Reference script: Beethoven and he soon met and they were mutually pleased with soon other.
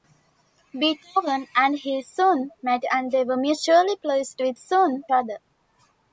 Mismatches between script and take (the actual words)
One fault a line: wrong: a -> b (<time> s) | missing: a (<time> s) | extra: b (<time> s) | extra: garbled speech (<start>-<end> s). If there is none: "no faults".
no faults